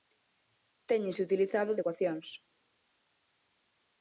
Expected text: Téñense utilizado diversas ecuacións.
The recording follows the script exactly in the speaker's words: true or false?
false